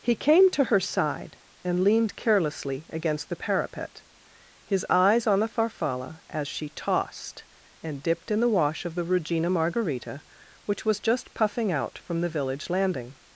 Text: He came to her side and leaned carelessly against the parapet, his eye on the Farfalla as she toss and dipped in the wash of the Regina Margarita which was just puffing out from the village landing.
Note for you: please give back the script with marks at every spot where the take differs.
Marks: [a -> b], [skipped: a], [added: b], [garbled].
He came to her side and leaned carelessly against the parapet, his [eye -> eyes] on the Farfalla as she [toss -> tossed] and dipped in the wash of the Regina Margarita which was just puffing out from the village landing.